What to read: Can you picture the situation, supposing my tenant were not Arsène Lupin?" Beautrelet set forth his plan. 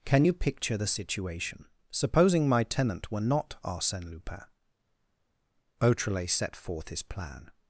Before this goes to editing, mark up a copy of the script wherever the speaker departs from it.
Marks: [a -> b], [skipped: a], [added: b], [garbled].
Can you picture the situation, supposing my tenant were not Arsène Lupin?" Beautrelet set forth his plan.